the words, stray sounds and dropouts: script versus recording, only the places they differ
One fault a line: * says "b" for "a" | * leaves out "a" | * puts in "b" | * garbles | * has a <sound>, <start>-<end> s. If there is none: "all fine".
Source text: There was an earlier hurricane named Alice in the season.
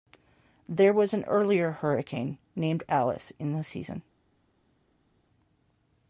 all fine